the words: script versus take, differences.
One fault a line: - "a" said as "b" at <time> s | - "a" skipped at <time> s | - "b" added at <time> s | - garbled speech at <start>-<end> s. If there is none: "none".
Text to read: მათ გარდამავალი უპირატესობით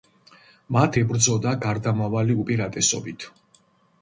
- "ებრძოდა" added at 1.0 s